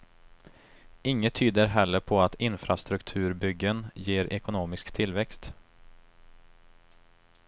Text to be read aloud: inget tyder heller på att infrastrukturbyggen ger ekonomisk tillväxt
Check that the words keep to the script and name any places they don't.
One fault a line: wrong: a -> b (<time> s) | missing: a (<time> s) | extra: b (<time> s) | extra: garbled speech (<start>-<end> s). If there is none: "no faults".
no faults